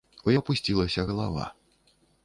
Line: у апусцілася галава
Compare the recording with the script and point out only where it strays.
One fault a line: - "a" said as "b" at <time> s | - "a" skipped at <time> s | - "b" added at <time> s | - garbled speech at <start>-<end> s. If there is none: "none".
none